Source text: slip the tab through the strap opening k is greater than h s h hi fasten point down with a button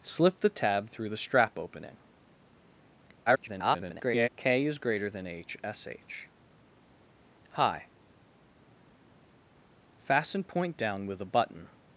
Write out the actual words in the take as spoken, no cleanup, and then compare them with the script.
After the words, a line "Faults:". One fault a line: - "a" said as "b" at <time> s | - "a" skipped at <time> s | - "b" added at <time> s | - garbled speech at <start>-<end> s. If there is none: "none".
slip the tab through the strap opening [garbled] k is greater than h s h hi fasten point down with a button
Faults:
- garbled speech at 3.3-4.3 s